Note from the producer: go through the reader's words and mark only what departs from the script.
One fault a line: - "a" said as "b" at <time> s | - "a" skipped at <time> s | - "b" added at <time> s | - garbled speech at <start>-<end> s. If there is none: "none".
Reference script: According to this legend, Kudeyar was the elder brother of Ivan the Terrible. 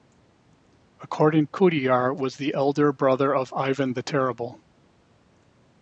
- "to this legend" skipped at 1.4 s